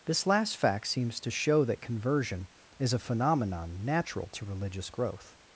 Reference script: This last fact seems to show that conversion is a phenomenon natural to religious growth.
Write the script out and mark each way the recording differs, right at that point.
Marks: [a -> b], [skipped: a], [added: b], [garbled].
This last fact seems to show that conversion is a phenomenon natural to religious growth.